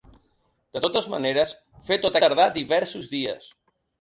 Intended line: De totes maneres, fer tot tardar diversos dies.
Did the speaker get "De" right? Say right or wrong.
right